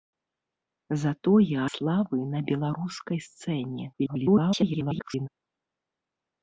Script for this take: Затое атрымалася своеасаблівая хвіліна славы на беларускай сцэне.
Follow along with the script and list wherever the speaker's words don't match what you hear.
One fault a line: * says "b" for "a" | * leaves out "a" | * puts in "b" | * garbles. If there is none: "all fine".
* leaves out "атрымалася своеасаблівая хвіліна"
* garbles